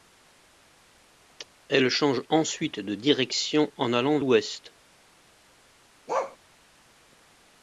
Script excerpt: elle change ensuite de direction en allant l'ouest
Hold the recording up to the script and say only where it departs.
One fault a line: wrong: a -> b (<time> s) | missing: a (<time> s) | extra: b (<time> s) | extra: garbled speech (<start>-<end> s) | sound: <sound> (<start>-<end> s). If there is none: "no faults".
sound: bark (6.1-6.4 s)